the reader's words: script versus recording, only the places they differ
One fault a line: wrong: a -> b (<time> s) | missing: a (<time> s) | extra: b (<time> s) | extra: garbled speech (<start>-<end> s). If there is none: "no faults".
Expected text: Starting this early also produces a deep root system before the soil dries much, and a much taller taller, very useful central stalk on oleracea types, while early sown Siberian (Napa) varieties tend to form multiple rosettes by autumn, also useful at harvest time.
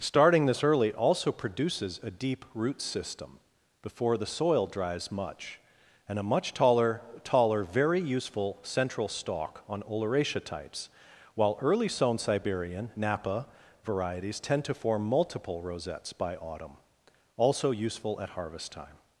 no faults